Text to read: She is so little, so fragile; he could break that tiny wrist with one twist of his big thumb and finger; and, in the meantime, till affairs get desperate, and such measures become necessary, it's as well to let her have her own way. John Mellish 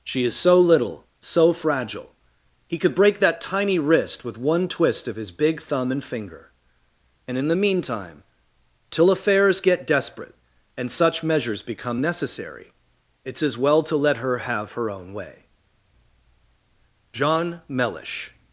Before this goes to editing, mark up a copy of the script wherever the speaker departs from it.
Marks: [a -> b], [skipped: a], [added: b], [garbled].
She is so little, so fragile; he could break that tiny wrist with one twist of his big thumb and finger; and, in the meantime, till affairs get desperate, and such measures become necessary, it's as well to let her have her own way. John Mellish